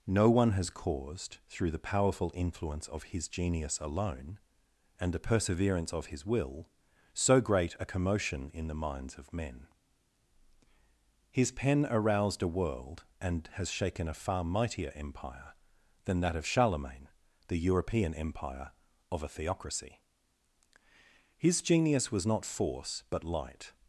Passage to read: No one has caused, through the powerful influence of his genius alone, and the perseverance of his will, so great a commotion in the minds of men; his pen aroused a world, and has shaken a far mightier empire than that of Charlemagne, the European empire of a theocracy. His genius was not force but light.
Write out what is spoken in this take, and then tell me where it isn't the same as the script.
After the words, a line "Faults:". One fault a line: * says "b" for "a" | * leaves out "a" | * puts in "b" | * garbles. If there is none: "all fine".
No one has caused, through the powerful influence of his genius alone, and the perseverance of his will, so great a commotion in the minds of men; his pen aroused a world, and has shaken a far mightier empire than that of Charlemagne, the European empire of a theocracy. His genius was not force but light.
Faults:
all fine